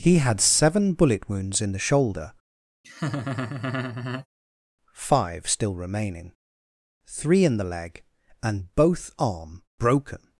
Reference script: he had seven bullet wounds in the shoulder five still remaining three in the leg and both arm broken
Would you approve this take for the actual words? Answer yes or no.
yes